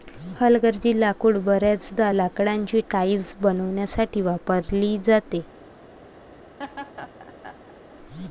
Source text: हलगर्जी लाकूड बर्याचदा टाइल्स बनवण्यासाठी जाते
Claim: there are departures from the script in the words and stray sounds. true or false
true